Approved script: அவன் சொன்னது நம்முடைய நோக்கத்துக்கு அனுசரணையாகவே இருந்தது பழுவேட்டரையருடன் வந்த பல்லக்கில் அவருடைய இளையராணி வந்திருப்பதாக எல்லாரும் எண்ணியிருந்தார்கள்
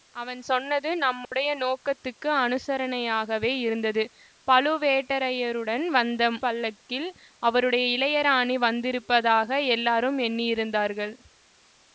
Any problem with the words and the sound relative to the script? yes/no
yes